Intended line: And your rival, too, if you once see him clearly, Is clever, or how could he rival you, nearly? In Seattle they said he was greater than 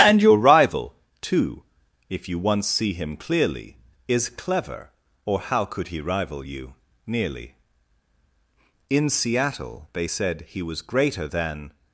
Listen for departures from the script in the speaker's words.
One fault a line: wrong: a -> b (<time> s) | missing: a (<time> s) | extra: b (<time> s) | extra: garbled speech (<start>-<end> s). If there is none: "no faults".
no faults